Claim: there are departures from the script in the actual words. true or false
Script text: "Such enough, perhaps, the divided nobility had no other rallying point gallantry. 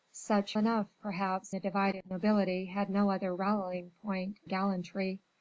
false